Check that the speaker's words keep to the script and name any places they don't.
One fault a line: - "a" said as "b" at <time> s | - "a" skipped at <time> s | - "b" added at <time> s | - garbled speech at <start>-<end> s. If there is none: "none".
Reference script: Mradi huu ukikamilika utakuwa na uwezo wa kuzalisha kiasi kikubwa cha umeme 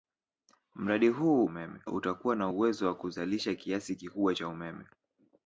- "ukikamilika" said as "umeme" at 1.4 s